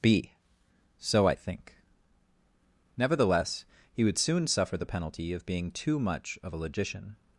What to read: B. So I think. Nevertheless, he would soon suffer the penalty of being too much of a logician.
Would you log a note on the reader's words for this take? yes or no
no